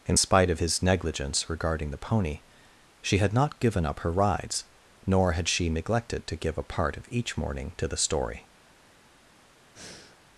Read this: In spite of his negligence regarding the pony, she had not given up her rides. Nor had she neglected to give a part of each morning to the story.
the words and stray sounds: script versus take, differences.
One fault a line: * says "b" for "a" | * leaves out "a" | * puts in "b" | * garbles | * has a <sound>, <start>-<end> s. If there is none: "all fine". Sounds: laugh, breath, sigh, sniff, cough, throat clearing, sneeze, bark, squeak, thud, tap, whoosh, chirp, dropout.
* has a breath, 9.8-10.2 s